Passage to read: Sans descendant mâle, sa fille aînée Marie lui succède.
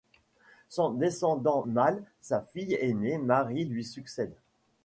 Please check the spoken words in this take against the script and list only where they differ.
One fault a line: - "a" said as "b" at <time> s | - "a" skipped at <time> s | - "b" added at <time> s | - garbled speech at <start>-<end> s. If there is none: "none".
none